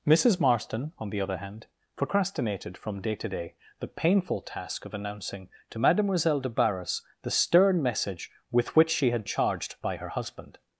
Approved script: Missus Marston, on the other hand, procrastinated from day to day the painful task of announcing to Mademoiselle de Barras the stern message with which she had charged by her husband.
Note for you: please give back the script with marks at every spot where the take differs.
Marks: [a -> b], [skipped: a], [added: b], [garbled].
Missus Marston, on the other hand, procrastinated from day to day the painful task of announcing to Mademoiselle de Barras the stern message with which she had charged by her husband.